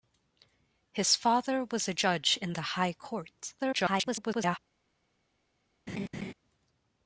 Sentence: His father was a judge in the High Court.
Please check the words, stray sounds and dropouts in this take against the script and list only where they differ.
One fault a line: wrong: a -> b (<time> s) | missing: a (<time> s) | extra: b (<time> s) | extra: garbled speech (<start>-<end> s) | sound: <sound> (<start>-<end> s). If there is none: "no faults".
extra: garbled speech (3.6-4.6 s)
sound: laugh (5.9-6.3 s)